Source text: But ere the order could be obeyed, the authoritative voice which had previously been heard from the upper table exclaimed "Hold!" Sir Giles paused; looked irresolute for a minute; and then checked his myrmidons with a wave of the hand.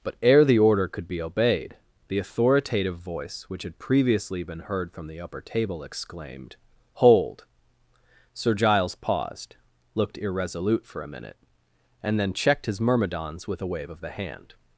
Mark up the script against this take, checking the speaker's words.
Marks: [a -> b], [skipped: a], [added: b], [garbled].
But ere the order could be obeyed, the authoritative voice which had previously been heard from the upper table exclaimed "Hold!" Sir Giles paused; looked irresolute for a minute; and then checked his myrmidons with a wave of the hand.